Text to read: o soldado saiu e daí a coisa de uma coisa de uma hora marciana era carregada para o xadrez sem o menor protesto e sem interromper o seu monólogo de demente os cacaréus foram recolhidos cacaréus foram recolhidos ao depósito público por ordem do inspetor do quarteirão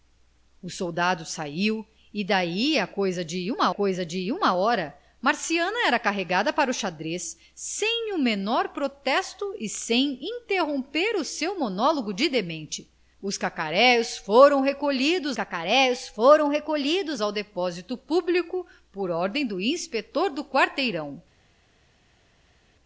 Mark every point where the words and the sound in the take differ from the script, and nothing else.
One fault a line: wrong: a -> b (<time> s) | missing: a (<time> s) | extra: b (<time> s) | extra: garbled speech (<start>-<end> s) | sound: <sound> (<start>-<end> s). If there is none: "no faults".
no faults